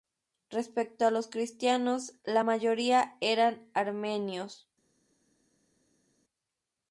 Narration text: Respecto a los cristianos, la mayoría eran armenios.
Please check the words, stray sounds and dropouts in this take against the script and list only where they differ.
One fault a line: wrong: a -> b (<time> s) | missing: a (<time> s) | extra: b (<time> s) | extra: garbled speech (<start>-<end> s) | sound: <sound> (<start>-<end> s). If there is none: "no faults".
no faults